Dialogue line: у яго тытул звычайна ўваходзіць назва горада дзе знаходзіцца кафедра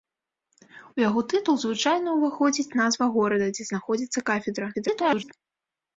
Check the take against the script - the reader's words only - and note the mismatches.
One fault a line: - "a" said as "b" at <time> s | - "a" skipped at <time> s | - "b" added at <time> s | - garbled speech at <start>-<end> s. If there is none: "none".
- garbled speech at 4.7-5.3 s